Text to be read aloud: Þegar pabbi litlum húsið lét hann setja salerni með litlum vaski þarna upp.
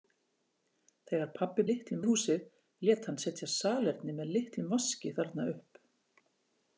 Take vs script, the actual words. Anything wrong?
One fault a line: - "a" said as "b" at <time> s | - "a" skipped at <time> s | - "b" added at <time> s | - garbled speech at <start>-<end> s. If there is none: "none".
none